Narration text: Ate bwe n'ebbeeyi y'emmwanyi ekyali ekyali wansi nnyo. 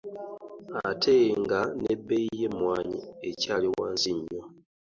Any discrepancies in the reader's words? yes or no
yes